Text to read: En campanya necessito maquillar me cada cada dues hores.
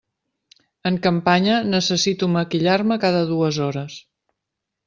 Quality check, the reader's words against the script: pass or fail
fail